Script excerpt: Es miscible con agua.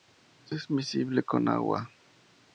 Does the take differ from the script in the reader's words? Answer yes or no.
no